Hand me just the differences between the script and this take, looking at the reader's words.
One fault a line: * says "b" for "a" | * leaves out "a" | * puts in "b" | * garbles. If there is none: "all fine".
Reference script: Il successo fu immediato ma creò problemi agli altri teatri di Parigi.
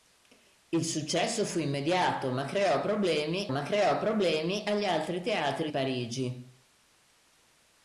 * puts in "ma creò problemi"
* leaves out "di"